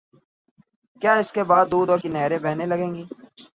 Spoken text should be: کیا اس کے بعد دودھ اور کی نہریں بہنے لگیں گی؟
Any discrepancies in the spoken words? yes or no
no